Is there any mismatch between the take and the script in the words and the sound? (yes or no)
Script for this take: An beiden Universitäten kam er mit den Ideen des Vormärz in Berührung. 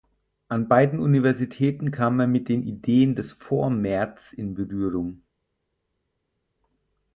no